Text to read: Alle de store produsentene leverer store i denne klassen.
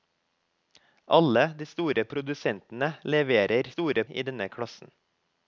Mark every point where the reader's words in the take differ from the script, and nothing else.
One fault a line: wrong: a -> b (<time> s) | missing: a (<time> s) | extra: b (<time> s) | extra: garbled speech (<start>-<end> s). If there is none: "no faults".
no faults